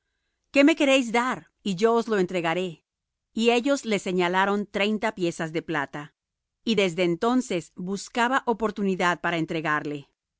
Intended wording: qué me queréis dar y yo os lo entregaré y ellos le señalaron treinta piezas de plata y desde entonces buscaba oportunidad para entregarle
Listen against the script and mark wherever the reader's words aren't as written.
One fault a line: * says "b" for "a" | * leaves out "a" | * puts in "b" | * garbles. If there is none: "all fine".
all fine